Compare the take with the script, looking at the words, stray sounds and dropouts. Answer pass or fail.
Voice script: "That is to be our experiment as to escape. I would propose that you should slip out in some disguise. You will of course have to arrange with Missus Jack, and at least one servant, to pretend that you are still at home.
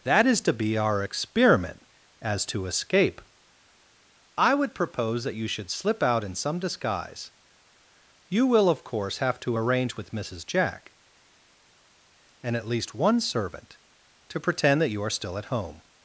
pass